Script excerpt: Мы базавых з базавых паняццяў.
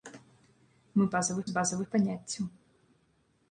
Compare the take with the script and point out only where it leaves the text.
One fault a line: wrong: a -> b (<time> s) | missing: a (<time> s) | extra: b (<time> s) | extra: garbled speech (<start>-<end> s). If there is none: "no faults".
no faults